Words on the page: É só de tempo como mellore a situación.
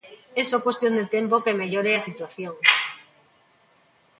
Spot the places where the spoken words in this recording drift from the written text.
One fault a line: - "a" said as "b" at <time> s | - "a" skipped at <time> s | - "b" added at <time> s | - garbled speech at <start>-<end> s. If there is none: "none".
- "cuestión" added at 0.7 s
- "como" said as "que" at 1.4 s